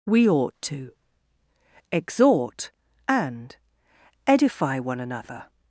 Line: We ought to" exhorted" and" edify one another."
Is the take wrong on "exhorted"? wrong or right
wrong